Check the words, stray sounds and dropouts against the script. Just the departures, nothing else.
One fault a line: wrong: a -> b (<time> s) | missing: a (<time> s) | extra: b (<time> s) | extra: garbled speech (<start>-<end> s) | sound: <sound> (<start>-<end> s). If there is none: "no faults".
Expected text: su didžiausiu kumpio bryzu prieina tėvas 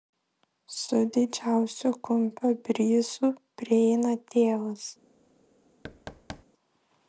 sound: thud (5.8-6.4 s)